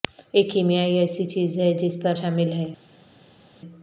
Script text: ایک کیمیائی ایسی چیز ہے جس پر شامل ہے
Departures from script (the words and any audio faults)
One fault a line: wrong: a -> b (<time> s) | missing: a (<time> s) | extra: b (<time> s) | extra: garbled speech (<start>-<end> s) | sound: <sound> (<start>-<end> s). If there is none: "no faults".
no faults